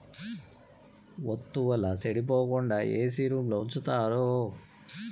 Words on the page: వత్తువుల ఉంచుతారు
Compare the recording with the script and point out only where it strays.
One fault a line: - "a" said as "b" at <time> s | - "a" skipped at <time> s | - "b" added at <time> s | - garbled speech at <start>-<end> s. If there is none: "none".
- "సెడిపోకుండా ఏసీ రూంలో" added at 2.0 s